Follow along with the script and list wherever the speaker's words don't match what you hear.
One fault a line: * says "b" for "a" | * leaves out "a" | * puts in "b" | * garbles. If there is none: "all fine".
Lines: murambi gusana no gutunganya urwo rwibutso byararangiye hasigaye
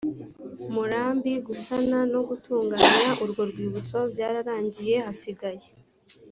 all fine